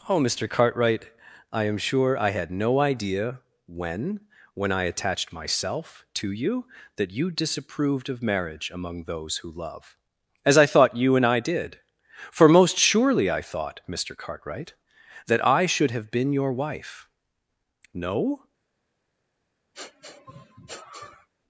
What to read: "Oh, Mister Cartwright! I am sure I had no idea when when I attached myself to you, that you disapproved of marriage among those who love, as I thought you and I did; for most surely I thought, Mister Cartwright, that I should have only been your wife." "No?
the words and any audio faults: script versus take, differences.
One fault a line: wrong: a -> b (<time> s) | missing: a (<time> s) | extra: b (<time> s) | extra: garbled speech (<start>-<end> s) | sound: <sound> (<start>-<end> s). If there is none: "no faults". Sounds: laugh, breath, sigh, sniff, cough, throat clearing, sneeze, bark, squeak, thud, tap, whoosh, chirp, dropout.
missing: only (16.1 s)
sound: sniff (19.7-21.3 s)